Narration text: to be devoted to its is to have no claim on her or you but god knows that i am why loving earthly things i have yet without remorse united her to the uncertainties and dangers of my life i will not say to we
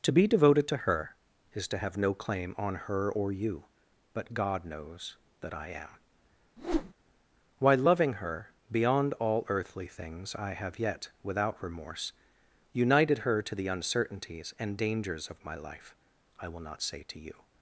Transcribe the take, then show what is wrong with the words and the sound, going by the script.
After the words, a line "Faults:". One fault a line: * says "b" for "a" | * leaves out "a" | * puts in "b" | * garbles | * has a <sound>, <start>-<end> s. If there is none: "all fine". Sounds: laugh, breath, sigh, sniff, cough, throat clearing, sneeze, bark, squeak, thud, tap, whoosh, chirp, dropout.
to be devoted to her is to have no claim on her or you but god knows that i am why loving her beyond all earthly things i have yet without remorse united her to the uncertainties and dangers of my life i will not say to you
Faults:
* says "her" for "its"
* has a whoosh, 6.6-6.9 s
* puts in "her beyond all"
* says "you" for "we"